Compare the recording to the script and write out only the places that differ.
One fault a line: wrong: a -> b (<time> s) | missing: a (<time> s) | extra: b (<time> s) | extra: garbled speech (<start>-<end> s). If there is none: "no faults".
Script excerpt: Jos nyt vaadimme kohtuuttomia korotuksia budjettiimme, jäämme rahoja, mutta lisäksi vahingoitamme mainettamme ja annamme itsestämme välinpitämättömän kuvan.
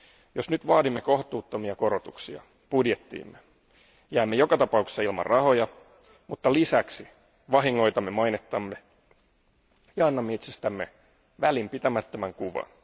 extra: joka tapauksessa ilman (4.3 s)